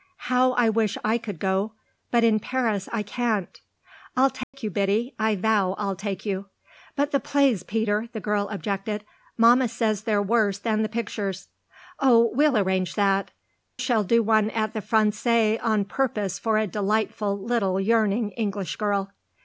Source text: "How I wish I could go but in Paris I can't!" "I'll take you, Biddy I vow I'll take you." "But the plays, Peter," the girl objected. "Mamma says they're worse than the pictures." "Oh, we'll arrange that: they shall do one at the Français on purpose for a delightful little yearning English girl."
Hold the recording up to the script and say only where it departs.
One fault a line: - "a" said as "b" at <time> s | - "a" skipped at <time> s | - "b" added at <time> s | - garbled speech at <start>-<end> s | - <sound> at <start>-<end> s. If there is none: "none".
- dropout at 4.4-4.5 s
- "they" skipped at 13.3 s